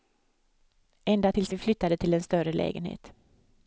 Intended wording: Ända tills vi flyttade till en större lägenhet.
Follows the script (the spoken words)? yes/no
yes